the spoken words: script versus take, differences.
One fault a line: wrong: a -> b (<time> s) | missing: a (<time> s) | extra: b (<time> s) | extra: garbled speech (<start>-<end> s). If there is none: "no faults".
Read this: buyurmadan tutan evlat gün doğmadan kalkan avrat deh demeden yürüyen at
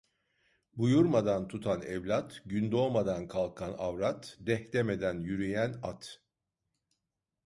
no faults